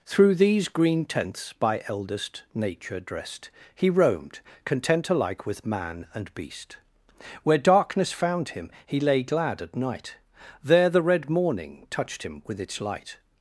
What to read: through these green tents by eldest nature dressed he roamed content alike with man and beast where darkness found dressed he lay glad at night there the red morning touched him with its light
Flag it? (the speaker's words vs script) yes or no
yes